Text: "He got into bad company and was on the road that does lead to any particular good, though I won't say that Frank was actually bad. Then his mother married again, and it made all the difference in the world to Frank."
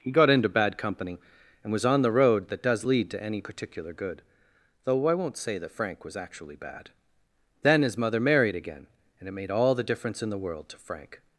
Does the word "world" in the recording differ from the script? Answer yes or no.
no